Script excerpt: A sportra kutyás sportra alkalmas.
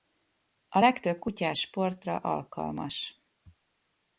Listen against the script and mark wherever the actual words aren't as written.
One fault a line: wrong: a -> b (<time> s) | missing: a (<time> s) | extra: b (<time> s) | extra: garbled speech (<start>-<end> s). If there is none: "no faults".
wrong: sportra -> legtöbb (0.8 s)